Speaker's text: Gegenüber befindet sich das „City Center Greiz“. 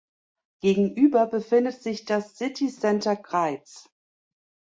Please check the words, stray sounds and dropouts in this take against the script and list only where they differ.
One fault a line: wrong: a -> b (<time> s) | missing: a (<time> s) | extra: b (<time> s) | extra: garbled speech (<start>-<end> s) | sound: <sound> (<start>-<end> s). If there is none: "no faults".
no faults